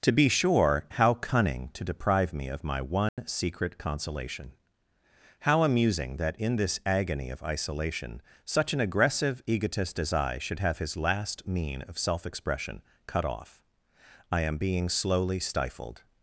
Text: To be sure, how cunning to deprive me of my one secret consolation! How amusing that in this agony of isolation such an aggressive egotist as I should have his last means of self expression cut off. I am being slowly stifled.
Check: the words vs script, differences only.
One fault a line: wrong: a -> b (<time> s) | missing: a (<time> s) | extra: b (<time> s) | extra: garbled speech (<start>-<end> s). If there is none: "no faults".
wrong: means -> mean (11.5 s)